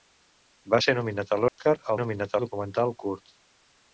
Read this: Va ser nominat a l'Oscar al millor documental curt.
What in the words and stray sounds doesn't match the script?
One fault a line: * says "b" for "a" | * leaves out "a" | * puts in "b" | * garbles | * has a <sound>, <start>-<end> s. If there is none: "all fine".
* has a dropout, 1.5-1.6 s
* says "nominat" for "millor"